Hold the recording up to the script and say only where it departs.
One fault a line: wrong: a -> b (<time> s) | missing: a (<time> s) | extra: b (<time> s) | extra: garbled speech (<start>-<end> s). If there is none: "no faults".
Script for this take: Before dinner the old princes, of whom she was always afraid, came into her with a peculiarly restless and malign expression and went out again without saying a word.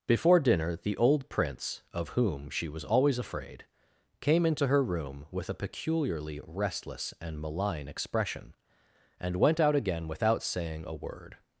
wrong: princes -> prince (1.3 s)
extra: room (4.8 s)